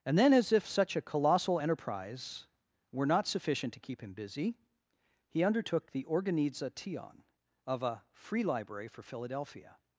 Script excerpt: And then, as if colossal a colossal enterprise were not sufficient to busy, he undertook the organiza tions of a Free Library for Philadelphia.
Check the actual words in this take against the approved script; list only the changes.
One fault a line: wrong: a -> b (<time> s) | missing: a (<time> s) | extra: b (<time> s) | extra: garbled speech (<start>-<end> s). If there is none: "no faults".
wrong: colossal -> such (0.7 s)
extra: keep him (3.8 s)
wrong: tions -> tion (6.8 s)